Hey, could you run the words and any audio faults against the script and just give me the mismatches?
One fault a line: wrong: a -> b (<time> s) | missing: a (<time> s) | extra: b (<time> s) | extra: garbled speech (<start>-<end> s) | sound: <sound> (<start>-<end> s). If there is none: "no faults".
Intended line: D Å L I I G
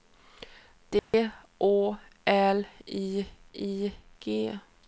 sound: dropout (1.0-1.1 s)